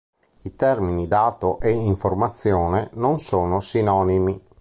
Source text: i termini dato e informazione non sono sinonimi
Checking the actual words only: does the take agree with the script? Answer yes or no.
yes